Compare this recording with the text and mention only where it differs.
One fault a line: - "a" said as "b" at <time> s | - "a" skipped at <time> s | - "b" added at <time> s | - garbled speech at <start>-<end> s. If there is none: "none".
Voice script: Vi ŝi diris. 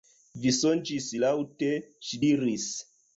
- "sonĝis laŭte" added at 0.6 s